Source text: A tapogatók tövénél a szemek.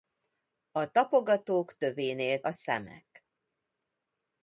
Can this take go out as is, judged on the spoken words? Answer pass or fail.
pass